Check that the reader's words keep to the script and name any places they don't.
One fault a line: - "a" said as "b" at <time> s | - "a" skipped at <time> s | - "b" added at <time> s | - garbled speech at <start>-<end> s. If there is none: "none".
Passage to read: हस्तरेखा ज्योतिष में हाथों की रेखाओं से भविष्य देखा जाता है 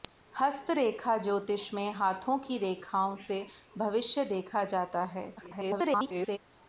- garbled speech at 5.4-6.4 s